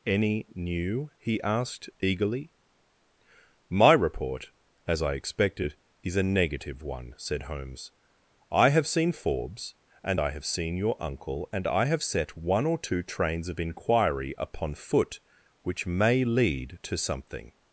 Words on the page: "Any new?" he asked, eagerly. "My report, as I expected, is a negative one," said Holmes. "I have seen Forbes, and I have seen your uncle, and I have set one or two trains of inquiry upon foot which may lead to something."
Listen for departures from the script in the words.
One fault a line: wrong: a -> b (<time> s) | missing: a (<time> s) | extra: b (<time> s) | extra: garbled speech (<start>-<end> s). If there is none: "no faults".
no faults